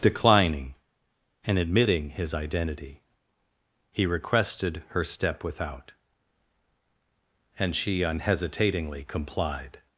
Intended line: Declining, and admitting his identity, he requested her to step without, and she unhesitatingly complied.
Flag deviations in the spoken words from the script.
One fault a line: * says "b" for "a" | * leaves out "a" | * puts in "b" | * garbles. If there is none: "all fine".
* leaves out "to"